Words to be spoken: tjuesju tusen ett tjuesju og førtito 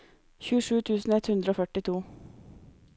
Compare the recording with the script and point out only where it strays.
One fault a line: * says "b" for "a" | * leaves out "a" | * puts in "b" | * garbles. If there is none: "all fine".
* says "hundre" for "tjuesju"